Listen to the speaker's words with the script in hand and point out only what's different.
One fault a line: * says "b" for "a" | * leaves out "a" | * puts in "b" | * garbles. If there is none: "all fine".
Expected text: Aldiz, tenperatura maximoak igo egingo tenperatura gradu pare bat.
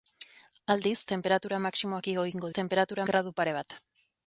all fine